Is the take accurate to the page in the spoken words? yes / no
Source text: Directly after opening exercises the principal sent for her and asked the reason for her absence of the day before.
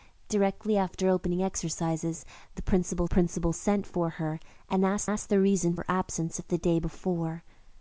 no